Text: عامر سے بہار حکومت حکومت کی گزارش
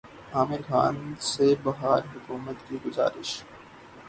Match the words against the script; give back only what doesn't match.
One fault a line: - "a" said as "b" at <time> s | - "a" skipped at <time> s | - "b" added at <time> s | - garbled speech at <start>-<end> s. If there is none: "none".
- "خان" added at 0.6 s
- "حکومت" skipped at 2.6 s